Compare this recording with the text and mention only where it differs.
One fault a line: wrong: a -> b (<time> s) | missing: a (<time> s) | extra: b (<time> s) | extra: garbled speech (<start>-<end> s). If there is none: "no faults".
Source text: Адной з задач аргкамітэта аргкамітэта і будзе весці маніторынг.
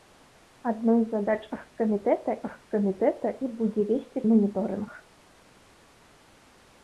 no faults